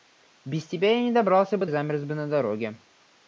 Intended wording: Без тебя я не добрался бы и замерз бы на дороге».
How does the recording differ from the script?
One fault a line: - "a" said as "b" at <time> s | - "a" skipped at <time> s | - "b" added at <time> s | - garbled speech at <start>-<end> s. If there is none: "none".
none